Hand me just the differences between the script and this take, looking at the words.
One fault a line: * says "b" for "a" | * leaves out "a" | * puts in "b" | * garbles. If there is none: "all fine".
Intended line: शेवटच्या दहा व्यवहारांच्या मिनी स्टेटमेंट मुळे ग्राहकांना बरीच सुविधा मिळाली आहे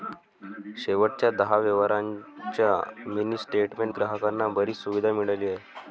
* leaves out "मुळे"